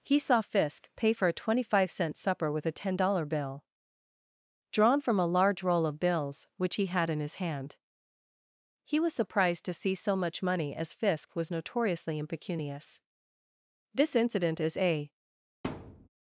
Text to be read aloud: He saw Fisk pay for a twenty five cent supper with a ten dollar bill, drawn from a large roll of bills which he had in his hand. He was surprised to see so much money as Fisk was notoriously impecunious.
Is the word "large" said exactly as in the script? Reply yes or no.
yes